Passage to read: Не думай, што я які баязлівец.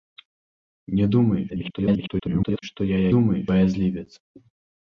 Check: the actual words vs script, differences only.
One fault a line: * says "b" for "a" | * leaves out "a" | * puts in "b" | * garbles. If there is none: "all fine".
* garbles
* says "думай" for "які"